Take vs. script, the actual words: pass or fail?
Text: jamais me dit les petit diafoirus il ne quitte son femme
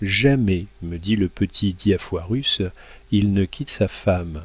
fail